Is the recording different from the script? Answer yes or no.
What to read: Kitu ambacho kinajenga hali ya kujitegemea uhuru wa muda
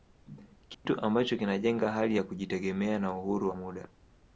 yes